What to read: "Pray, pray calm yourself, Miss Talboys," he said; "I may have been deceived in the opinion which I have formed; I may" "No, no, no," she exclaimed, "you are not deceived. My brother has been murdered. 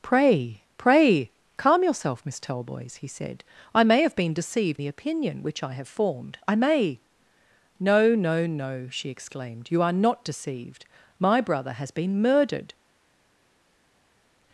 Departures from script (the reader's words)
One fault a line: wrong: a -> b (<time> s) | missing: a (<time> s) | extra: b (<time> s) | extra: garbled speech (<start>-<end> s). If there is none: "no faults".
missing: in (4.8 s)